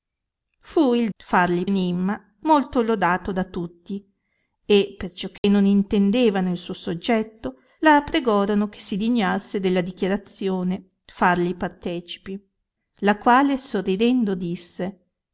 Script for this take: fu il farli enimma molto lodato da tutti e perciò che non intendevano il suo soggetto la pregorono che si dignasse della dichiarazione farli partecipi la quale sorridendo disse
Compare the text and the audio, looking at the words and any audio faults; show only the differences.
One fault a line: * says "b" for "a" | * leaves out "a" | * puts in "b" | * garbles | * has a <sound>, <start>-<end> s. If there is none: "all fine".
* has a dropout, 5.4-5.4 s